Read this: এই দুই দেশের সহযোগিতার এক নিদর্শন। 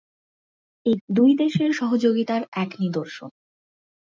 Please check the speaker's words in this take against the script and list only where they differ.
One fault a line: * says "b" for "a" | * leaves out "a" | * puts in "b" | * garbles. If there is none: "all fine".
all fine